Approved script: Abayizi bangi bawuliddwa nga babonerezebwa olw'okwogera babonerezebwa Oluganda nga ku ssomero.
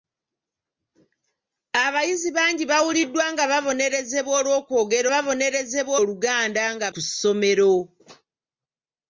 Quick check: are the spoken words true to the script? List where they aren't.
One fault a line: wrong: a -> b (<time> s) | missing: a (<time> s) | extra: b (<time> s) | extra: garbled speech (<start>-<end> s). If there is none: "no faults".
no faults